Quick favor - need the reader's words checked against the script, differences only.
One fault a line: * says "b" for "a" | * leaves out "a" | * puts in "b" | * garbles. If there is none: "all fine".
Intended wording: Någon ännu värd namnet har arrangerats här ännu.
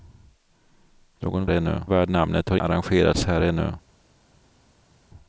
all fine